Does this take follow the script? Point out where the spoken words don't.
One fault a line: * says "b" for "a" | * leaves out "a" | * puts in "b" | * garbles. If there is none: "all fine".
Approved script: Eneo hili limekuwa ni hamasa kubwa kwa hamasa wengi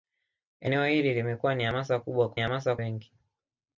all fine